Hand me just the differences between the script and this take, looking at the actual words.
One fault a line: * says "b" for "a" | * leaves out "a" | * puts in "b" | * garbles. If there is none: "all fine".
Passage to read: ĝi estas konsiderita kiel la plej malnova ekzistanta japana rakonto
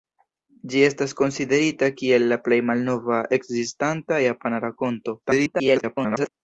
* garbles